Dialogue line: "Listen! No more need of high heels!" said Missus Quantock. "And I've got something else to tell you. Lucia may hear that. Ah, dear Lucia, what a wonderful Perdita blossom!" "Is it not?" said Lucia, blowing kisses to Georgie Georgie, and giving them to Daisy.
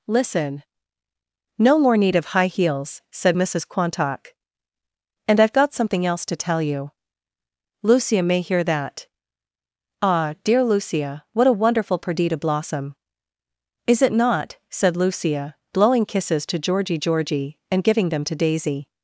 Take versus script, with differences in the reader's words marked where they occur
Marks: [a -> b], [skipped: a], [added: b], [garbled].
"Listen! No more need of high heels!" said Missus Quantock. "And I've got something else to tell you. Lucia may hear that. Ah, dear Lucia, what a wonderful Perdita blossom!" "Is it not?" said Lucia, blowing kisses to Georgie Georgie, and giving them to Daisy.